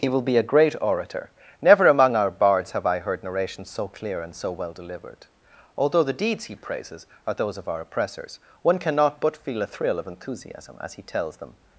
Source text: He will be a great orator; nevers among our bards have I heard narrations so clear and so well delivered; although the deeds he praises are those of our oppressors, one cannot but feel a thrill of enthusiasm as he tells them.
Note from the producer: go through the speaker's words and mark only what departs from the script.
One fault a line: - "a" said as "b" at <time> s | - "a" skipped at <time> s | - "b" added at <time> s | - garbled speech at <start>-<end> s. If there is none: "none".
- "nevers" said as "never" at 1.6 s